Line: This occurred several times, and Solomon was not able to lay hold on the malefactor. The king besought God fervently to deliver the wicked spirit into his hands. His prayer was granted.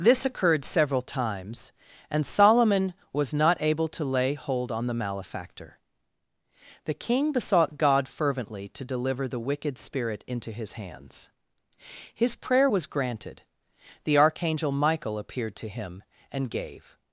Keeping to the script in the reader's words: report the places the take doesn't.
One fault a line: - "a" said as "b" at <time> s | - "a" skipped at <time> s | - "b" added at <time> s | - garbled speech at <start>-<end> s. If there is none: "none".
- "The archangel Michael appeared to him and gave" added at 14.0 s